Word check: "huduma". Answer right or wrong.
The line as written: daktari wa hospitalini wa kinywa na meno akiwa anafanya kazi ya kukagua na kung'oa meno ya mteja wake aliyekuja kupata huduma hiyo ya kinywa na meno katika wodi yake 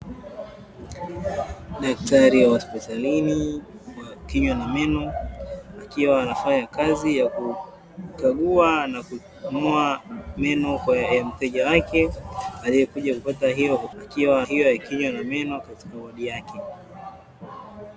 wrong